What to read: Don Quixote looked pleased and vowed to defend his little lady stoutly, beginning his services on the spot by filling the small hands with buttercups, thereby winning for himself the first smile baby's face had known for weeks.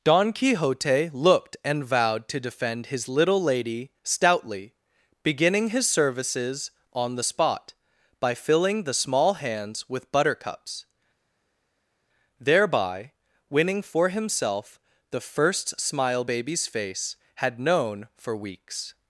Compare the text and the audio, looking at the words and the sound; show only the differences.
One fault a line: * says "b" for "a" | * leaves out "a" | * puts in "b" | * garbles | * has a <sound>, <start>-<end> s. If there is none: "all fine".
* leaves out "pleased"